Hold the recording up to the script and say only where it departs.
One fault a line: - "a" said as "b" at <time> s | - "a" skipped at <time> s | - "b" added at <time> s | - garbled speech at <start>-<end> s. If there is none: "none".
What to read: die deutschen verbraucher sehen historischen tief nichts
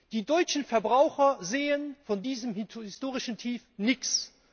- "von diesem" added at 2.0 s